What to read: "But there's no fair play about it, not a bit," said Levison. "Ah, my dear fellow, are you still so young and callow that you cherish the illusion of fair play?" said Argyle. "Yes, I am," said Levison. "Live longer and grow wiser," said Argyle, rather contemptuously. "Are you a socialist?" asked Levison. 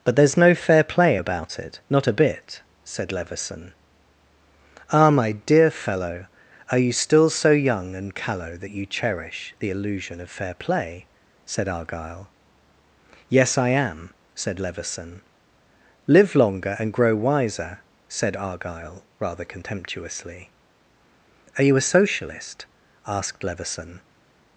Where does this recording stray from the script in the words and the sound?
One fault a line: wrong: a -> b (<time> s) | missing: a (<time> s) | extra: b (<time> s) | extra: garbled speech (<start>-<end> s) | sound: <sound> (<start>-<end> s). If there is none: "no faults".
no faults